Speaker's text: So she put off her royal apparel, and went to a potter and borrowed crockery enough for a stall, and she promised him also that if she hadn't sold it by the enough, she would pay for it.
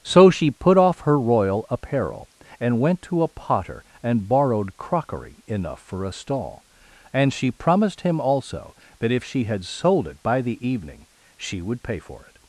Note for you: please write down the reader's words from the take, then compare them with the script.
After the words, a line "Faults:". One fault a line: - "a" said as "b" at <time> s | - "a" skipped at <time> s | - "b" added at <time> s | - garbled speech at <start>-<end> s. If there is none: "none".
So she put off her royal apparel, and went to a potter and borrowed crockery enough for a stall, and she promised him also that if she had sold it by the evening, she would pay for it.
Faults:
- "hadn't" said as "had" at 9.5 s
- "enough" said as "evening" at 10.7 s